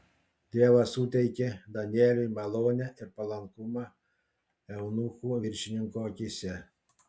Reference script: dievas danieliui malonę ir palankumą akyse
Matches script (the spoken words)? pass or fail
fail